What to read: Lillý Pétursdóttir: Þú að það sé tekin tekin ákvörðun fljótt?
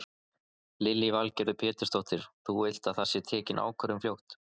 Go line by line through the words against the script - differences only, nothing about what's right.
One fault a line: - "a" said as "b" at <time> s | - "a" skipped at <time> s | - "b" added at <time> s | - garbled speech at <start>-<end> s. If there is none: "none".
- "Valgerður" added at 1.1 s
- "vilt" added at 2.6 s
- "tekin" skipped at 3.6 s